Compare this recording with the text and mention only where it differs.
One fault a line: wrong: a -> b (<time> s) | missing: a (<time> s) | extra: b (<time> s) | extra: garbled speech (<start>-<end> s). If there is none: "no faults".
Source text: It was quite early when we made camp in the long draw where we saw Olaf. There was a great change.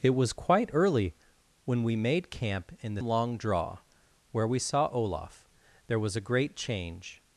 no faults